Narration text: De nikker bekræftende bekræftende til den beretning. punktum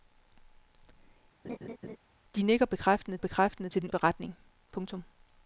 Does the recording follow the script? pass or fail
pass